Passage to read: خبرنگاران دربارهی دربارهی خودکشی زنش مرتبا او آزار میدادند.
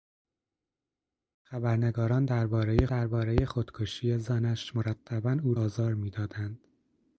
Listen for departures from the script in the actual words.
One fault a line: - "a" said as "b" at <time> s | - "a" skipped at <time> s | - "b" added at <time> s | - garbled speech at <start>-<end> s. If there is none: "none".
none